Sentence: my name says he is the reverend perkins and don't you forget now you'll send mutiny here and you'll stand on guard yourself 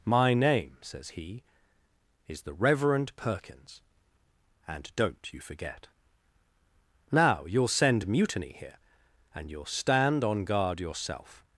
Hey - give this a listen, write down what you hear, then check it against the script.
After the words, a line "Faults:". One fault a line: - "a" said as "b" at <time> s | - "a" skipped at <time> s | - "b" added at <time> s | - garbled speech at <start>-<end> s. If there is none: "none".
my name says he is the reverend perkins and don't you forget now you'll send mutiny here and you'll stand on guard yourself
Faults:
none